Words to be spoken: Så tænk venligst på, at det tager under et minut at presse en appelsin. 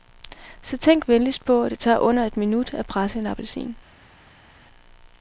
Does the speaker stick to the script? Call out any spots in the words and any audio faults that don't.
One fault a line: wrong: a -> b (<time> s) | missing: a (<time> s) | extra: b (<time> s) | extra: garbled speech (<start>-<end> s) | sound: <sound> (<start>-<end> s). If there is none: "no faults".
no faults